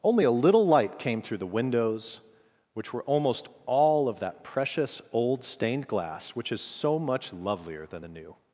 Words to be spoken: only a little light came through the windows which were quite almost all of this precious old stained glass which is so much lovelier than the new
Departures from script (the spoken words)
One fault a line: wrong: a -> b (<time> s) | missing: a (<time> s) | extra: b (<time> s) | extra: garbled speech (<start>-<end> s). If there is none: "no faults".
missing: quite (3.0 s)
wrong: this -> that (4.2 s)